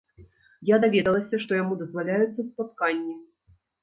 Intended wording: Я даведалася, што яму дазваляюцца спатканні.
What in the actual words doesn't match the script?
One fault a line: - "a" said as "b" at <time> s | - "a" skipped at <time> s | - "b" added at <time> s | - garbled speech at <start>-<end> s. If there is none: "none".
none